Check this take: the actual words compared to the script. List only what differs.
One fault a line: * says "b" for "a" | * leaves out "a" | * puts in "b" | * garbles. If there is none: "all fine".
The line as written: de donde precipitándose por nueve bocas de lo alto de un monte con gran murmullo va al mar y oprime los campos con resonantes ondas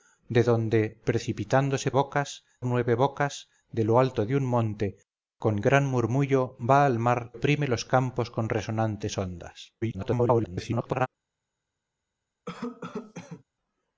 * says "bocas" for "por"
* leaves out "y"
* garbles